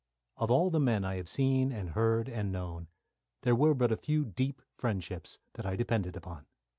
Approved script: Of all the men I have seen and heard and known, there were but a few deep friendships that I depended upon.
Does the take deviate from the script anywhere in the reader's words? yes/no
no